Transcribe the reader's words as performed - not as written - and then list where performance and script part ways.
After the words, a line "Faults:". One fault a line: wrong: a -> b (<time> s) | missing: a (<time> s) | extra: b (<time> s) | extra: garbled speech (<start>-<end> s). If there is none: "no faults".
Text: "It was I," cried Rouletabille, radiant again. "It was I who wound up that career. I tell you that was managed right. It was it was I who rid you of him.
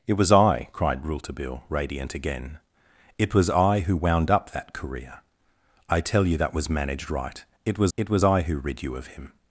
"It was I," cried Rouletabille, radiant again. "It was I who wound up that career. I tell you that was managed right. It was it was I who rid you of him.
Faults:
no faults